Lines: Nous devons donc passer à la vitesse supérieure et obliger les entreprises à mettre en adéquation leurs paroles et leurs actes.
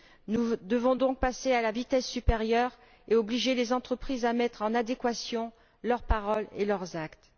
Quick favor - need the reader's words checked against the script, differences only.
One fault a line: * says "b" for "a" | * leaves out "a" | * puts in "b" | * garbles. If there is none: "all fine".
all fine